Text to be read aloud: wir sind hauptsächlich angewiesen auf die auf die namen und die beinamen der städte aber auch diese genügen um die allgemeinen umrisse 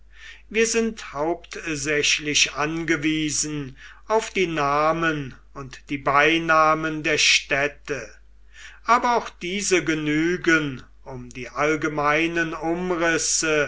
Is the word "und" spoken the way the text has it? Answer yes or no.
yes